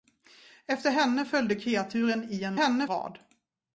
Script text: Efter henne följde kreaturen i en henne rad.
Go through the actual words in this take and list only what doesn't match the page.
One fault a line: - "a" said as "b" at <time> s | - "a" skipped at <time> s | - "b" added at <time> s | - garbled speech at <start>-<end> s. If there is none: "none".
none